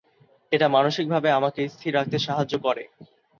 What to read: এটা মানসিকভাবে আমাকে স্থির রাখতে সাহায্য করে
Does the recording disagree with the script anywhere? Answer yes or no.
no